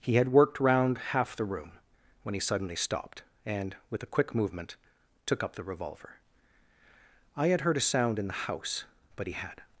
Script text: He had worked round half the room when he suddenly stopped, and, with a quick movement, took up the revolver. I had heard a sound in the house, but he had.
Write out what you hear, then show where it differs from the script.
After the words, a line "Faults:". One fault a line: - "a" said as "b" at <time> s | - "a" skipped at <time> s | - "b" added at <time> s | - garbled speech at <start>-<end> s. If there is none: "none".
He had worked round half the room when he suddenly stopped, and, with a quick movement, took up the revolver. I had heard a sound in the house, but he had.
Faults:
none